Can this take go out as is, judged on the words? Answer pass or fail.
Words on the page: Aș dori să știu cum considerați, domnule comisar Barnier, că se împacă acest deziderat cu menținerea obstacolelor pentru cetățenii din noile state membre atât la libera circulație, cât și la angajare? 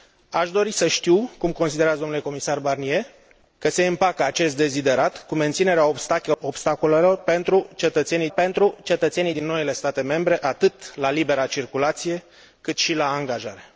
fail